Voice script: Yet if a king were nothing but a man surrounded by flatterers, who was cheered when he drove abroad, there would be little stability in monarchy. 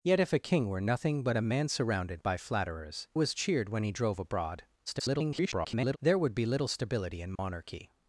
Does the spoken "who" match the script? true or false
false